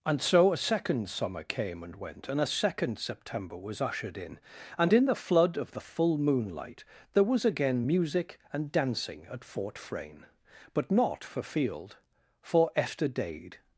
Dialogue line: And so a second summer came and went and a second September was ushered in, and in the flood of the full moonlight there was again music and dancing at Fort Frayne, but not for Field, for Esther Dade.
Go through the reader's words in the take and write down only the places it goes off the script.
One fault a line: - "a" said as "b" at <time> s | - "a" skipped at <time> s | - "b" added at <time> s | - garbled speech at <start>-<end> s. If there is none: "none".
none